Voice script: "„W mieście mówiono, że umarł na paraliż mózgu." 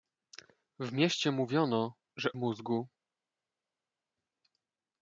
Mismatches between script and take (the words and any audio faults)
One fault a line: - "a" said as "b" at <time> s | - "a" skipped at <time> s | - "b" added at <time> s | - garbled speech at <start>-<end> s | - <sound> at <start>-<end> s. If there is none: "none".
- "umarł na paraliż" skipped at 2.3 s